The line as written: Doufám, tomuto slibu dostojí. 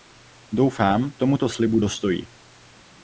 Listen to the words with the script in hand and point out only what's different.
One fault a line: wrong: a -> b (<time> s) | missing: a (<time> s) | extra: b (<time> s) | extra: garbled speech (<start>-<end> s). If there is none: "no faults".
no faults